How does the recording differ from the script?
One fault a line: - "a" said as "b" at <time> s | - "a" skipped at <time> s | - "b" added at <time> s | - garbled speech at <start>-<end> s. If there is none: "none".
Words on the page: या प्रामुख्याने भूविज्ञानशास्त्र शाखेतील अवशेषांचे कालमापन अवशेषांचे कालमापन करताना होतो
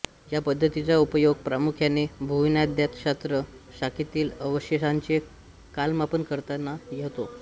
- "पद्धतीचा उपयोग" added at 0.4 s
- "अवशेषांचे कालमापन" skipped at 6.2 s